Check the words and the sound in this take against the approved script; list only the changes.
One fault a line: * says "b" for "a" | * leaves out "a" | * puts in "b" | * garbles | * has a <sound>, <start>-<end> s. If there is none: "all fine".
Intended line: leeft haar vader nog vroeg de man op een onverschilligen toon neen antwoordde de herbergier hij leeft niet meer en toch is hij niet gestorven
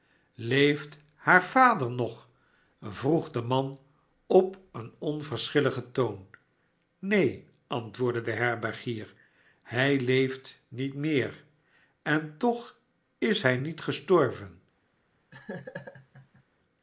* has a laugh, 15.3-16.4 s